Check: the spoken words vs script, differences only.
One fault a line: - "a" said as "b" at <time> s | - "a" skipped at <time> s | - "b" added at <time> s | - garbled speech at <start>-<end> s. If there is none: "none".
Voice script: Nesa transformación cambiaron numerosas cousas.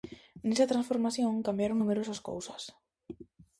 none